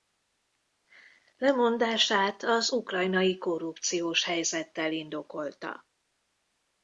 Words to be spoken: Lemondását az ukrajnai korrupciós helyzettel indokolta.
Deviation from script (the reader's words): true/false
false